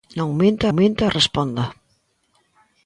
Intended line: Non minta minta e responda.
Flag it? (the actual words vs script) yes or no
no